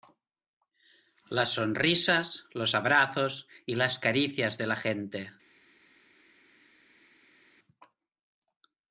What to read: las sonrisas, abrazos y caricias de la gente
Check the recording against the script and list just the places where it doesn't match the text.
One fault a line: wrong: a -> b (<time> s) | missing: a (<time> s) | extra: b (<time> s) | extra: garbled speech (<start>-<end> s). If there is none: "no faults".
extra: los (2.5 s)
extra: las (3.7 s)